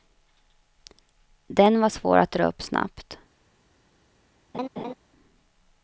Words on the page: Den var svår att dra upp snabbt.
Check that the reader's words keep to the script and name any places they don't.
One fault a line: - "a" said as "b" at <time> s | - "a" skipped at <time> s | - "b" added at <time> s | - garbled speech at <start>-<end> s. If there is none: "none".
none